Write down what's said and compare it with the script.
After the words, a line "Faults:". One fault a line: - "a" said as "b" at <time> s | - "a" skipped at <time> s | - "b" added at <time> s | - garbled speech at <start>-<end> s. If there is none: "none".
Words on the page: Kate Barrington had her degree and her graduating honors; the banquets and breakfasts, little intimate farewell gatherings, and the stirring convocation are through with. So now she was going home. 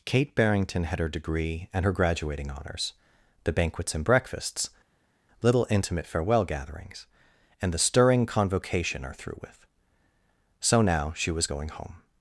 Kate Barrington had her degree and her graduating honors; the banquets and breakfasts, little intimate farewell gatherings, and the stirring convocation are through with. So now she was going home.
Faults:
none